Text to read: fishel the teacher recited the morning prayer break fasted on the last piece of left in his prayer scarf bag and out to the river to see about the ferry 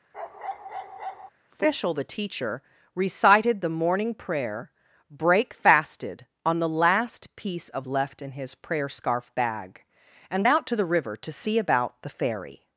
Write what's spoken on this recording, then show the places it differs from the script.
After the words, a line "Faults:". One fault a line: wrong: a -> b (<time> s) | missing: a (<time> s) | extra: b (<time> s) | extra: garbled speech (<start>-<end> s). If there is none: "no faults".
fishel the teacher recited the morning prayer break fasted on the last piece of left in his prayer scarf bag and out to the river to see about the ferry
Faults:
no faults